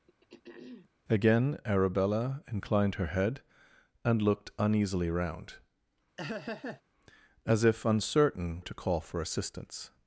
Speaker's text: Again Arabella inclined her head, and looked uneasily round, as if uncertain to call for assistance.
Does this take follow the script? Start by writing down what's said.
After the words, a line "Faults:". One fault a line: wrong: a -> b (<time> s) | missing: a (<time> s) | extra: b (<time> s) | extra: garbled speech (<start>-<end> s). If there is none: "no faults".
Again Arabella inclined her head, and looked uneasily round, as if uncertain to call for assistance.
Faults:
no faults